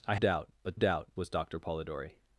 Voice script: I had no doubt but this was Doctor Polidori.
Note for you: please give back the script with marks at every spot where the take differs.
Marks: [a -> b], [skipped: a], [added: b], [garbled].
I [skipped: had no] doubt but [this -> doubt] was Doctor Polidori.